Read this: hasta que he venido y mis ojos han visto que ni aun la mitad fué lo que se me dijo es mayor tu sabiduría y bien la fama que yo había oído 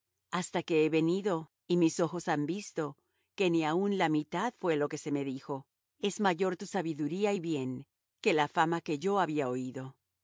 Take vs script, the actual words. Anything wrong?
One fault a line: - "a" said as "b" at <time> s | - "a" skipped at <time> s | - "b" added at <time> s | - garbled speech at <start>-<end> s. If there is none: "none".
- "que" added at 8.2 s